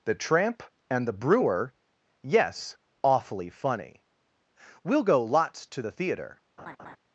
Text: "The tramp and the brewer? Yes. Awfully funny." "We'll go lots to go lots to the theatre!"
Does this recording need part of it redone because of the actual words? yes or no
yes